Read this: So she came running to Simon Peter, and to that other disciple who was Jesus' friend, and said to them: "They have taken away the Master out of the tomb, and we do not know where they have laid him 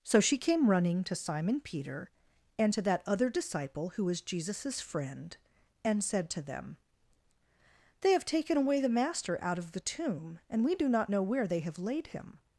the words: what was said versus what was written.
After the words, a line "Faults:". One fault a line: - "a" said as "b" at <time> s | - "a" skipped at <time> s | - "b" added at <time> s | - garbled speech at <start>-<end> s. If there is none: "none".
So she came running to Simon Peter, and to that other disciple who was Jesus' friend, and said to them: "They have taken away the Master out of the tomb, and we do not know where they have laid him
Faults:
none